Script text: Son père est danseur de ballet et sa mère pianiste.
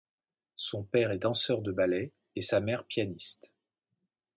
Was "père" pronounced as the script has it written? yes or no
yes